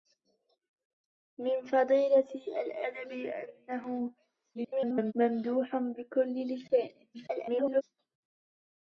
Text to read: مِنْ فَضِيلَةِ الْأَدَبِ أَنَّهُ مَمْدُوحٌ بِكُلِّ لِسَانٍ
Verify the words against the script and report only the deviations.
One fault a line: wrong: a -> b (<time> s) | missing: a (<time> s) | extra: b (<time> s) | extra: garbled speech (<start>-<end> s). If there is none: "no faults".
extra: garbled speech (4.5-5.1 s)
extra: garbled speech (7.1-7.8 s)